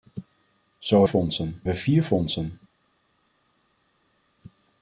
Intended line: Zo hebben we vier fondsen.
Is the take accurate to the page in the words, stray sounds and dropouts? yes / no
no